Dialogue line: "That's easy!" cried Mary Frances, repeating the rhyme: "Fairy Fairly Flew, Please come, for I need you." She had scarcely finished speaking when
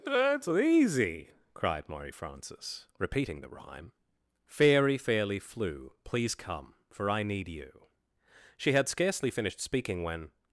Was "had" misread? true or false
false